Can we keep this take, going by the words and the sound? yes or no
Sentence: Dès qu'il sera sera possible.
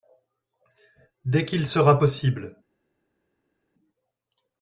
no